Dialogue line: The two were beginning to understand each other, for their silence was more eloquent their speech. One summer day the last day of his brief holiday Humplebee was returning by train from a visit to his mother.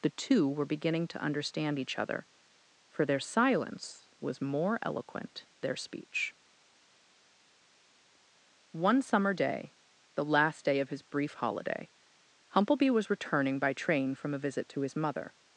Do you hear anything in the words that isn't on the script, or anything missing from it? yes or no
no